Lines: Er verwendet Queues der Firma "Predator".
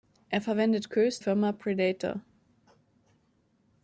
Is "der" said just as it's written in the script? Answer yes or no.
no